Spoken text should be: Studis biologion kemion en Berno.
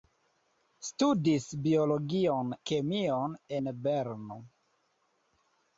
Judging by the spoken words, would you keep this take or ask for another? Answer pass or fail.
pass